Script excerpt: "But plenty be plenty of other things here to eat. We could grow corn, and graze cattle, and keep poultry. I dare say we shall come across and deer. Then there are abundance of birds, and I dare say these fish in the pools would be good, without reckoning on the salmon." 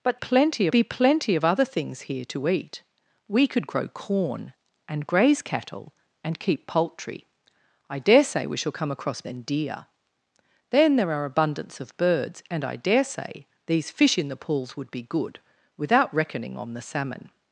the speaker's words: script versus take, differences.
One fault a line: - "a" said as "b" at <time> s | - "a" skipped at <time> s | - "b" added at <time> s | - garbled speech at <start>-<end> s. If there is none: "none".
none